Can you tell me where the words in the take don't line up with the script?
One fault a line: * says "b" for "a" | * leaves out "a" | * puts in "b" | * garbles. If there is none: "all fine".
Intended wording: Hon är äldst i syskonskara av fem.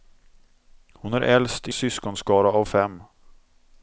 all fine